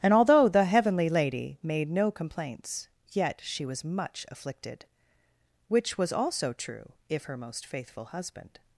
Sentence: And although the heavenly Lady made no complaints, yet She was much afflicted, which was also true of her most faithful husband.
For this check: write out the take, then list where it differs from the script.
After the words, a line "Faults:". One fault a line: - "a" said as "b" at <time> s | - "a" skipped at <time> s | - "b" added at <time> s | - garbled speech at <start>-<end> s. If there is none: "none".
And although the heavenly Lady made no complaints, yet She was much afflicted, which was also true if her most faithful husband.
Faults:
- "of" said as "if" at 7.1 s